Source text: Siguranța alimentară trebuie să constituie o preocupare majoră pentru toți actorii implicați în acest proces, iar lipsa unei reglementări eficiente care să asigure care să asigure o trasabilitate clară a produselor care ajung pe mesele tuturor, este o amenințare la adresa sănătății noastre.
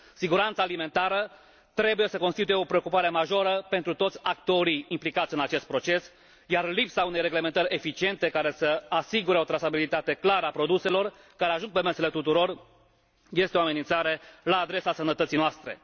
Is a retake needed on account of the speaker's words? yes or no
yes